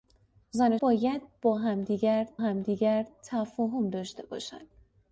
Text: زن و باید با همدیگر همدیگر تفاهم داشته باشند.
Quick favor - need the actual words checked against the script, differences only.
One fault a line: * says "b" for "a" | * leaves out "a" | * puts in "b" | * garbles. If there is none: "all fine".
all fine